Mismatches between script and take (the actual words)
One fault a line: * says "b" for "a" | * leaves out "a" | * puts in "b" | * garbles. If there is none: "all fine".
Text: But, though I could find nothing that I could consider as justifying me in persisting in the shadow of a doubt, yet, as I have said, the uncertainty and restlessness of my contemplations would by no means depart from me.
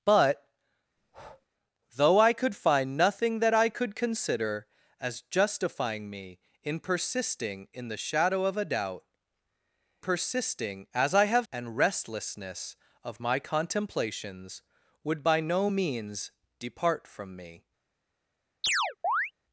* says "persisting" for "yet"
* leaves out "said the uncertainty"